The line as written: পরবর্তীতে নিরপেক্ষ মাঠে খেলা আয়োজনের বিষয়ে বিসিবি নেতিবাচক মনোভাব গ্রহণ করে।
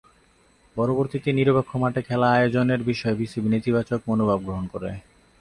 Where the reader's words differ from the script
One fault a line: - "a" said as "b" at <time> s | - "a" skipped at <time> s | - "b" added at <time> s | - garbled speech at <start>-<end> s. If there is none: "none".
none